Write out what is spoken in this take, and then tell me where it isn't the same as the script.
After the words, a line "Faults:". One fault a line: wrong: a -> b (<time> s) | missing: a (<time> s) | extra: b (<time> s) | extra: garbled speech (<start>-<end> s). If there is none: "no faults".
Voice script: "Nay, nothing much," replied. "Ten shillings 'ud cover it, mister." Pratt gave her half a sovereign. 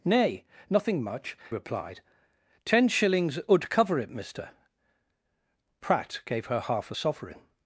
"Nay, nothing much," replied. "Ten shillings 'ud cover it, mister." Pratt gave her half a sovereign.
Faults:
no faults